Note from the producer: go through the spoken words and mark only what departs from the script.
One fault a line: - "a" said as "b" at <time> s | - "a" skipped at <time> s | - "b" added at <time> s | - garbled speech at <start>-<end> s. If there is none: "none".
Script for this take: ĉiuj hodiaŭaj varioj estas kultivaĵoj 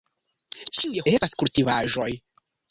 - "hodiaŭaj varioj" skipped at 1.0 s